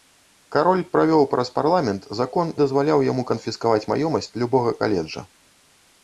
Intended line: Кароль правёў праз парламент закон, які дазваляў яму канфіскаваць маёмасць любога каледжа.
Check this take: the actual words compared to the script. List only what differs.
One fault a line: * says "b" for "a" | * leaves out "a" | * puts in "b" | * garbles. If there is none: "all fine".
* leaves out "які"